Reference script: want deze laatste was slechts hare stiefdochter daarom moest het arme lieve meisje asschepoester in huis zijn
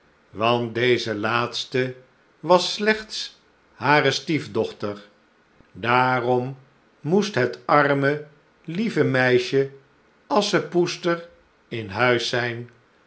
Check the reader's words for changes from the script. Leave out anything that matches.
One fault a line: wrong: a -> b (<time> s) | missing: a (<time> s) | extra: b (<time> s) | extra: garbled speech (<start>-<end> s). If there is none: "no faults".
no faults